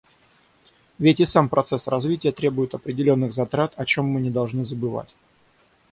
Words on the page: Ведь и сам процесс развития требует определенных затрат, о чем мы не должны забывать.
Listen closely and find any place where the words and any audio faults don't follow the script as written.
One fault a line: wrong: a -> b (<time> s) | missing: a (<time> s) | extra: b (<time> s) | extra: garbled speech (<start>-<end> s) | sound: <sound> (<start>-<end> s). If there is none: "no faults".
no faults